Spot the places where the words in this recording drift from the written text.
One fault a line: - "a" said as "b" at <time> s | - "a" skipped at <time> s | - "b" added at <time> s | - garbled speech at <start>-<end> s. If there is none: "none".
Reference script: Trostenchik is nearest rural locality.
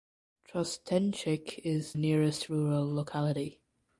none